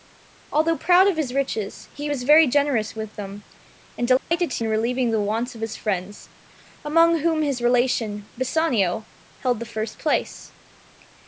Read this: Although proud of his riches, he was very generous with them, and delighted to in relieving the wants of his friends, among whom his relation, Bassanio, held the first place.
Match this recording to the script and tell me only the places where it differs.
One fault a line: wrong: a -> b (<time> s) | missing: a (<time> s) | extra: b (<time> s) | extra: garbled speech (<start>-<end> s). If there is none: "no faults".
no faults